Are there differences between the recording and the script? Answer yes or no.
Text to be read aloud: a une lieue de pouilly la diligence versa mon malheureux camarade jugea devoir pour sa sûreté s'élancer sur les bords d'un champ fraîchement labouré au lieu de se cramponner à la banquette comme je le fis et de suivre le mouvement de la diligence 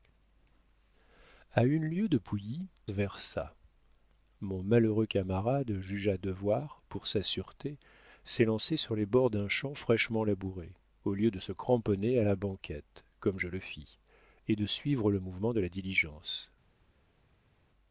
yes